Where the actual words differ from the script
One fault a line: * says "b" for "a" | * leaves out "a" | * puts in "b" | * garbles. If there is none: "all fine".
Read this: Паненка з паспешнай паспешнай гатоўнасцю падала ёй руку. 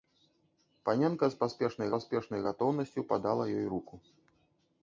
all fine